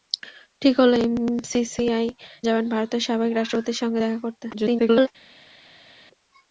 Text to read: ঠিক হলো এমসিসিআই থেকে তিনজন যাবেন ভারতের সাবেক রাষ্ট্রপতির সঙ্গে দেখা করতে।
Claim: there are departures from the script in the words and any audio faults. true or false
true